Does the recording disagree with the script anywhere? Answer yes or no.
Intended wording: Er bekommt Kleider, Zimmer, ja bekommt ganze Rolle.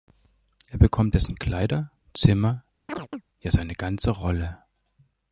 yes